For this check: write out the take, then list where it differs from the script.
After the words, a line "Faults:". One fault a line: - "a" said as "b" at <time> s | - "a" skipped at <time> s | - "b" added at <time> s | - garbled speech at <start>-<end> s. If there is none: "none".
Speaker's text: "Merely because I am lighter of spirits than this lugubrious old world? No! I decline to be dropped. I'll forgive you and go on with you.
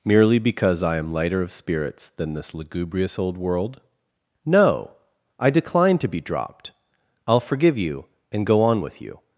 "Merely because I am lighter of spirits than this lugubrious old world? No! I decline to be dropped. I'll forgive you and go on with you.
Faults:
none